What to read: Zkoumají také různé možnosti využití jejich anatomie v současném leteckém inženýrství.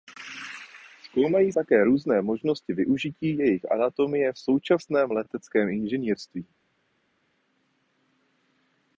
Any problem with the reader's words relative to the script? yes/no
no